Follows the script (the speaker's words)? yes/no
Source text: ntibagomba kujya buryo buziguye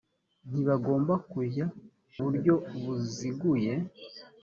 yes